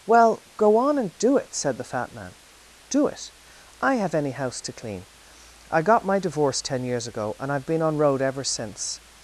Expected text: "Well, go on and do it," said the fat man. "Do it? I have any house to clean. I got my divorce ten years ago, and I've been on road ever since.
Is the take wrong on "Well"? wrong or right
right